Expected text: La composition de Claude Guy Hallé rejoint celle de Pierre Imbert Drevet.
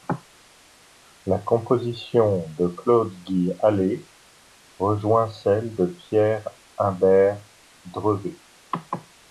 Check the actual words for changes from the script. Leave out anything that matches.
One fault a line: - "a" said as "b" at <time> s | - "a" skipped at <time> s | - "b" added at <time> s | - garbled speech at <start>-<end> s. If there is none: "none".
none